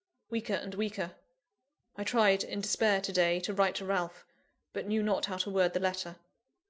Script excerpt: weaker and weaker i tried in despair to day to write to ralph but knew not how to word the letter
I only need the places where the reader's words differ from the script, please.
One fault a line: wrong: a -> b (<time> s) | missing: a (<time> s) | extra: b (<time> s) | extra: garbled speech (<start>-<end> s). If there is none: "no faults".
no faults